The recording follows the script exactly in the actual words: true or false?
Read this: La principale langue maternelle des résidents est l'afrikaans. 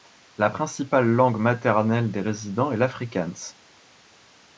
true